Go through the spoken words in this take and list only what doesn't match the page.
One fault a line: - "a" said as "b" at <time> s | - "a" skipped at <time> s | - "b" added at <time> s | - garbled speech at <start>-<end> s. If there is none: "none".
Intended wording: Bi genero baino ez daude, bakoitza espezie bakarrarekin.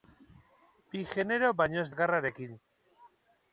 - "daude bakoitza espezie" skipped at 1.9 s